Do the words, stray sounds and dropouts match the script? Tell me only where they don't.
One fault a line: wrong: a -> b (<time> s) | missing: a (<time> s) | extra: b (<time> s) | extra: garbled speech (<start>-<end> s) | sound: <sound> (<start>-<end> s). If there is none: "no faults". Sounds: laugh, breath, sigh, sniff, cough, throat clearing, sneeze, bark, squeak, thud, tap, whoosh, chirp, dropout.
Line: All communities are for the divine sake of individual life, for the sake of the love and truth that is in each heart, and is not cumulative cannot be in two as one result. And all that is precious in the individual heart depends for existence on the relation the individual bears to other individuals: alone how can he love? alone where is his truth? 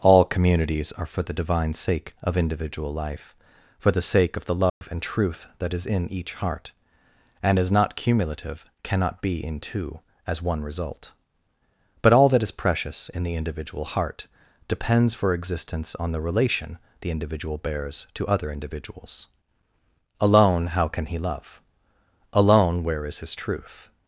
sound: dropout (4.7-4.8 s)
wrong: And -> But (12.0 s)